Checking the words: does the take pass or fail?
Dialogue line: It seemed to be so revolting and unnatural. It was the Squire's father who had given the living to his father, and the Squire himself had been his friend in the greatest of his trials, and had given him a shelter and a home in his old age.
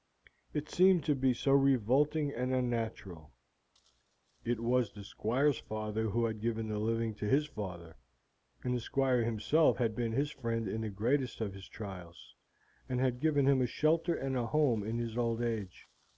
pass